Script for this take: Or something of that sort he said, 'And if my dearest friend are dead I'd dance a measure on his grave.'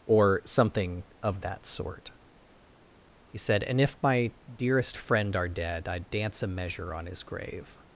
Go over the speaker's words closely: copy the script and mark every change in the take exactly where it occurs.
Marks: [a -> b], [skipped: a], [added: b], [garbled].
Or something of that sort he said, 'And if my dearest friend are dead I'd dance a measure on his grave.'